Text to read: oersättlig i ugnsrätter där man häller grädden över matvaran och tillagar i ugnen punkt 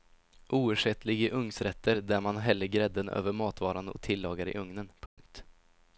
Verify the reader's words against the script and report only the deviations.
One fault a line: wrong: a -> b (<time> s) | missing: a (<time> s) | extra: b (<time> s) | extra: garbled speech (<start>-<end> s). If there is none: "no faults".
no faults